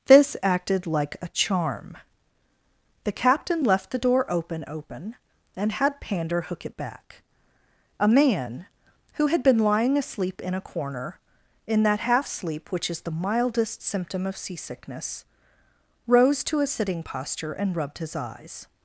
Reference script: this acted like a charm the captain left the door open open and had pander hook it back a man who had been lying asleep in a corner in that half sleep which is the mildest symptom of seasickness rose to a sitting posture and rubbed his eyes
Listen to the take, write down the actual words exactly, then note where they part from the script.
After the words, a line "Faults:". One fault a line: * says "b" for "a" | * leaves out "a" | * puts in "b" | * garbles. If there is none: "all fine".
this acted like a charm the captain left the door open open and had pander hook it back a man who had been lying asleep in a corner in that half sleep which is the mildest symptom of seasickness rose to a sitting posture and rubbed his eyes
Faults:
all fine